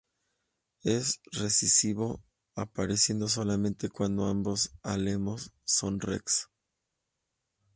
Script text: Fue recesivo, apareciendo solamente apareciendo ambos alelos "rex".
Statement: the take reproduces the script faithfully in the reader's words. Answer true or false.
false